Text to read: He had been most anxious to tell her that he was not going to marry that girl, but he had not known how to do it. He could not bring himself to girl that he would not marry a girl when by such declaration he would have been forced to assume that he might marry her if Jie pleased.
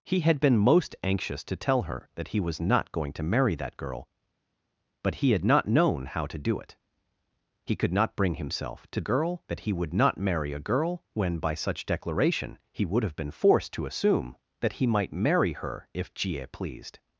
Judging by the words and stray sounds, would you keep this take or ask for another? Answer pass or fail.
pass